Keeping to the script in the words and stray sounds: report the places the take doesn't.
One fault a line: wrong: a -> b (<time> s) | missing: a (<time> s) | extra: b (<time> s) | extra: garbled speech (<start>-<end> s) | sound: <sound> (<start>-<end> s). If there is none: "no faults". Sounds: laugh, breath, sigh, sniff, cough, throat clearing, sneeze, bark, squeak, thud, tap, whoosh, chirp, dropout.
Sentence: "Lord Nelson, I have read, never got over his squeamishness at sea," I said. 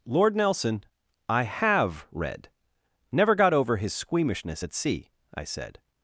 no faults